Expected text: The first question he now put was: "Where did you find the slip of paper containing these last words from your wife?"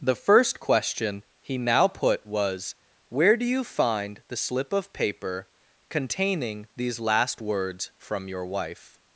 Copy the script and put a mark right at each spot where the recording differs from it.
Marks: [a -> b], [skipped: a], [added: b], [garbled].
The first question he now put was: "Where [did -> do] you find the slip of paper containing these last words from your wife?"